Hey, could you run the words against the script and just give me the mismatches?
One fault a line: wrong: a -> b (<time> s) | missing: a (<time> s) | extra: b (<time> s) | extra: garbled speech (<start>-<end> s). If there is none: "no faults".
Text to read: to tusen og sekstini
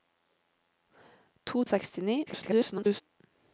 missing: tusen (1.6 s)
extra: garbled speech (2.3-3.0 s)